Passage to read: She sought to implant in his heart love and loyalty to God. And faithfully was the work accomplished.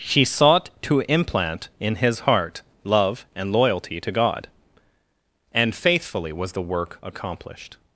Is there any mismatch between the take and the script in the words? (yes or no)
no